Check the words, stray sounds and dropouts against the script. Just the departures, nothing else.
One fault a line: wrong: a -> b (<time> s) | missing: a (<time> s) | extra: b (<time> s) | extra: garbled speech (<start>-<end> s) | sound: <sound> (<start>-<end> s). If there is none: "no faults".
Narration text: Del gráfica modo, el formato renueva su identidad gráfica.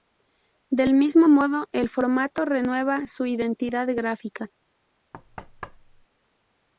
wrong: gráfica -> mismo (0.9 s)
sound: thud (5.1-6.1 s)